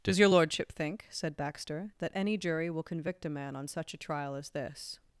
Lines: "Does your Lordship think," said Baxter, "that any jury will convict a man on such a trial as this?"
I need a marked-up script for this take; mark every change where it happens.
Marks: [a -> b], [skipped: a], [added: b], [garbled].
"Does your Lordship think," said Baxter, "that any jury will convict a man on such a trial as this?"